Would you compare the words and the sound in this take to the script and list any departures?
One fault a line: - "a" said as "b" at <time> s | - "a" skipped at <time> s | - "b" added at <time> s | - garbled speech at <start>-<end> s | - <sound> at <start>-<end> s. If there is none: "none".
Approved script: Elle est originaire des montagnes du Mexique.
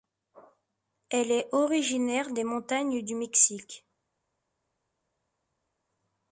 none